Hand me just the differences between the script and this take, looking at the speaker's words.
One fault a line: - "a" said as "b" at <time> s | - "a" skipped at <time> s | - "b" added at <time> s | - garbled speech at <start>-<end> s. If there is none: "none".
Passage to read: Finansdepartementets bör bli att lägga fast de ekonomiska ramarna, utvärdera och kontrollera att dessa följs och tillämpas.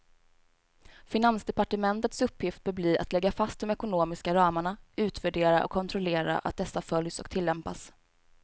- "uppgift" added at 2.2 s